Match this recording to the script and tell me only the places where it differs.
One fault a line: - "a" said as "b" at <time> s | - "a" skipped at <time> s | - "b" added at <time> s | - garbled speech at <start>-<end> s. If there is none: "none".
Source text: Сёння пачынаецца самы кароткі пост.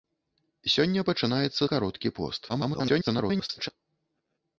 - "самы" skipped at 1.6 s
- garbled speech at 2.5-3.7 s